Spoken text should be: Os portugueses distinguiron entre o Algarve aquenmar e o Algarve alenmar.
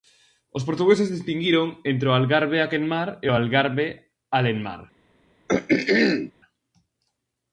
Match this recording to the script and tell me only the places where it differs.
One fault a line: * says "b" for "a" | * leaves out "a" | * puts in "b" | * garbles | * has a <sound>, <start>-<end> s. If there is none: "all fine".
* has a throat clearing, 5.5-6.3 s